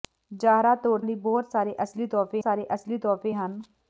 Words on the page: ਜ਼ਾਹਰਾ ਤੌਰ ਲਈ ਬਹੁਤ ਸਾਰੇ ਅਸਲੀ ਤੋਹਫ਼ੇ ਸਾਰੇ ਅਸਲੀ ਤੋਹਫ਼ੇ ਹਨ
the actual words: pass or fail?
pass